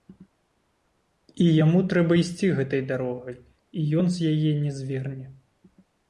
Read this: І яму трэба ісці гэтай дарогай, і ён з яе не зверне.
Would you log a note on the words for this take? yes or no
no